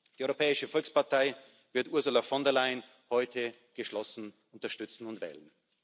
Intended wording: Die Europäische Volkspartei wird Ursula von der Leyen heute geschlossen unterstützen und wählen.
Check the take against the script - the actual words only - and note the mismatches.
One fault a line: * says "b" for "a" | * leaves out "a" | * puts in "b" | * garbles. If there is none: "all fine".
all fine